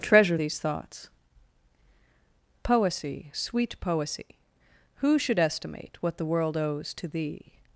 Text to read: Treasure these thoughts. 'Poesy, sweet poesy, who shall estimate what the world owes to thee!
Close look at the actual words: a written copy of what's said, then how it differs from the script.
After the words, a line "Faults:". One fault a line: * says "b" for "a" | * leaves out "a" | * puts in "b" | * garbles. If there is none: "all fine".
Treasure these thoughts. 'Poesy, sweet poesy, who should estimate what the world owes to thee!
Faults:
* says "should" for "shall"